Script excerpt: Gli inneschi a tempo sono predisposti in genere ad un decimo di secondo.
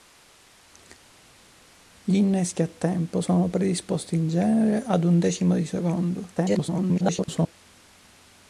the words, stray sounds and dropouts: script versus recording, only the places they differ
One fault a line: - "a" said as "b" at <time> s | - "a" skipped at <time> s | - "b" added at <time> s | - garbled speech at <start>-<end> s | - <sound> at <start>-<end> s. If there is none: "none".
- garbled speech at 6.4-7.5 s